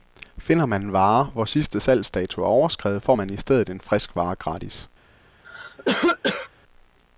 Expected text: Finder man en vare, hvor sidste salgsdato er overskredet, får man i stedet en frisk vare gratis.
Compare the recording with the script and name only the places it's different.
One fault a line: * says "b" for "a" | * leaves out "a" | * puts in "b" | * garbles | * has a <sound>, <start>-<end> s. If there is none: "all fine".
* has a cough, 5.4-6.5 s